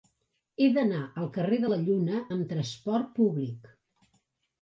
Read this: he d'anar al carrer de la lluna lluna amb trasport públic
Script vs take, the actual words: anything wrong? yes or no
yes